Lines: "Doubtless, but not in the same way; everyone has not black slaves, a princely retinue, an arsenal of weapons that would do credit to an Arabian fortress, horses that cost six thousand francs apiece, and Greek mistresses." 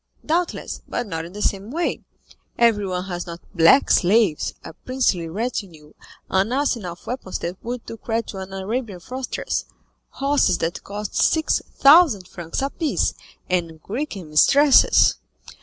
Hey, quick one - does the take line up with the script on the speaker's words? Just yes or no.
yes